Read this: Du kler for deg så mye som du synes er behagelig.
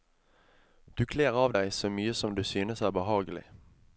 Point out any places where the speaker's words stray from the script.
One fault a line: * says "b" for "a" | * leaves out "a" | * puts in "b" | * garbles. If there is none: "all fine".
* says "av" for "for"